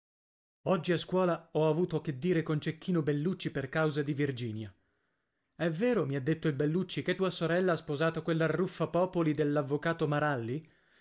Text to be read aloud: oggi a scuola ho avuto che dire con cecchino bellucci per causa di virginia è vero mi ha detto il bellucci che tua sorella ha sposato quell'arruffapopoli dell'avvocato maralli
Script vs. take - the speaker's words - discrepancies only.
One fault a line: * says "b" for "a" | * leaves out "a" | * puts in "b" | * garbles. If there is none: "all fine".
all fine